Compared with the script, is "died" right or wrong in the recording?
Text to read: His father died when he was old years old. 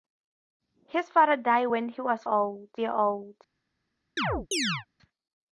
right